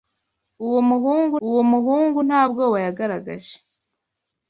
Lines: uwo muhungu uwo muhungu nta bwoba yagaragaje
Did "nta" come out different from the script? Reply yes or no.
no